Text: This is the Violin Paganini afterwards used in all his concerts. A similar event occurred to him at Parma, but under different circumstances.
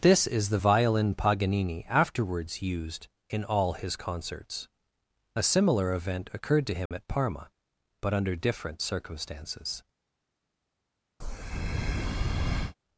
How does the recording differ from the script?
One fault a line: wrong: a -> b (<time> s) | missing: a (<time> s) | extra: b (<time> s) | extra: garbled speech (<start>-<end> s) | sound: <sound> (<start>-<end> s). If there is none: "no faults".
sound: dropout (6.9-6.9 s)
sound: breath (11.2-12.8 s)